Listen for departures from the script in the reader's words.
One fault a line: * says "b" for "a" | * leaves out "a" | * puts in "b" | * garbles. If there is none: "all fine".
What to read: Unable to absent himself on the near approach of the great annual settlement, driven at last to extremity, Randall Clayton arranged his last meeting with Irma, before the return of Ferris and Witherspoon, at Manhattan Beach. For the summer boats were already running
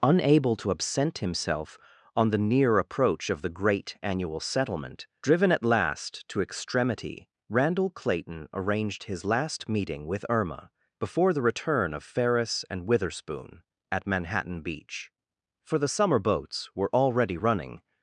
all fine